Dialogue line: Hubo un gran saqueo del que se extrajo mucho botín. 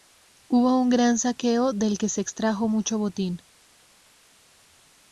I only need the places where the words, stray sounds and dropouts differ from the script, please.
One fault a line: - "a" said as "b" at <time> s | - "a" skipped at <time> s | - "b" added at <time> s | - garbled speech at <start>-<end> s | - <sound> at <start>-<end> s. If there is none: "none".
none